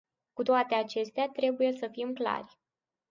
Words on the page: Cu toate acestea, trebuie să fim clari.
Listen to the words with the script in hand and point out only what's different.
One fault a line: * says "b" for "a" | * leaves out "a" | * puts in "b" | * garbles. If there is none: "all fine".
all fine